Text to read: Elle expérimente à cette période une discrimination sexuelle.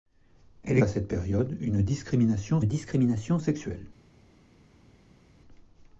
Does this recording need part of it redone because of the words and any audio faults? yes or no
yes